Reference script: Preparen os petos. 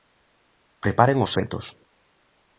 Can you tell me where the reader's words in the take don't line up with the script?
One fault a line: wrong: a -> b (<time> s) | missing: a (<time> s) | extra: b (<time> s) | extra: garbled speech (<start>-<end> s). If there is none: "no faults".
no faults